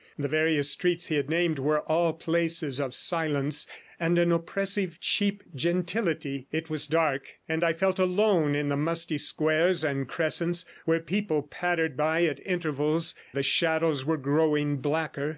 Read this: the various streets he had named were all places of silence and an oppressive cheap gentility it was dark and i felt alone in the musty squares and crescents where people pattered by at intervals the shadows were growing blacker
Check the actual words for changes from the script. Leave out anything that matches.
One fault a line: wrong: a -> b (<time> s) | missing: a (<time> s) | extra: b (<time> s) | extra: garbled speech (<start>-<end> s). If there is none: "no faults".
no faults